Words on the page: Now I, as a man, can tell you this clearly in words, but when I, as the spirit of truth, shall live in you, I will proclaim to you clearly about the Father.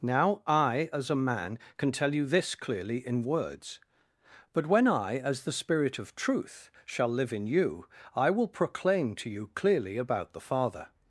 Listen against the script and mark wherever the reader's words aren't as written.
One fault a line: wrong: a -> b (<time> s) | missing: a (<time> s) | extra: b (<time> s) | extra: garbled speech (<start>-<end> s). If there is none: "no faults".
no faults